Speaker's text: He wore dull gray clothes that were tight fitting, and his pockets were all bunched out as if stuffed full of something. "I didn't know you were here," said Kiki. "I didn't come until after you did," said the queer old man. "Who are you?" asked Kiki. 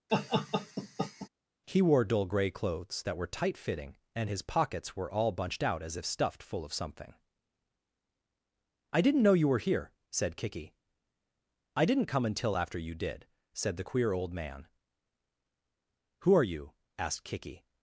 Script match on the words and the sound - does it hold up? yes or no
no